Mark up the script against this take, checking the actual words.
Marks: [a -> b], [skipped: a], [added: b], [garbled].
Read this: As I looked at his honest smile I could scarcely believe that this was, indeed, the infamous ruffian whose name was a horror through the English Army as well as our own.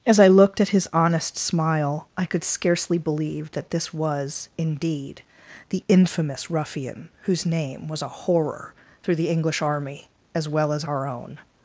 As I looked at his honest smile I could scarcely believe that this was, indeed, the infamous ruffian whose name was a horror through the English Army as well as our own.